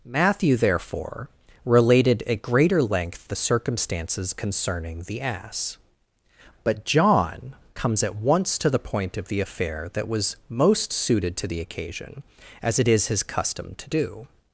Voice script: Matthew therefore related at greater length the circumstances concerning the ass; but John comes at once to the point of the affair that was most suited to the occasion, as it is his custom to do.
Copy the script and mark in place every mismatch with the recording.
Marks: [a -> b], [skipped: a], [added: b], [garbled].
Matthew therefore related at greater length the circumstances concerning the ass; but John comes at once to the point of the affair that was most suited to the occasion, as it is his custom to do.